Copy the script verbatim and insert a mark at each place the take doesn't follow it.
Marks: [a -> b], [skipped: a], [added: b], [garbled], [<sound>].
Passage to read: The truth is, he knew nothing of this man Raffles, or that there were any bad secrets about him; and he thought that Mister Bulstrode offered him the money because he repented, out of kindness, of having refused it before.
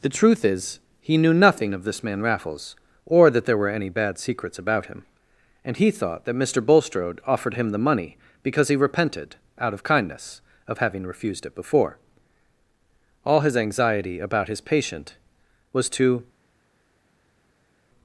The truth is, he knew nothing of this man Raffles, or that there were any bad secrets about him; and he thought that Mister Bulstrode offered him the money because he repented, out of kindness, of having refused it before. [added: All his anxiety about his patient was to]